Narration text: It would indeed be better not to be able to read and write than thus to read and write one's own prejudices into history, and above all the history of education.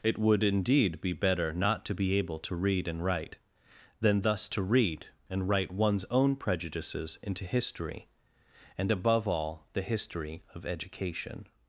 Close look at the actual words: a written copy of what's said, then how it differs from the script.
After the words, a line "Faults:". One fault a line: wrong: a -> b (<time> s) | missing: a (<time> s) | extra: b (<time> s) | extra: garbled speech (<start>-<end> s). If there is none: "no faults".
It would indeed be better not to be able to read and write than thus to read and write one's own prejudices into history, and above all the history of education.
Faults:
no faults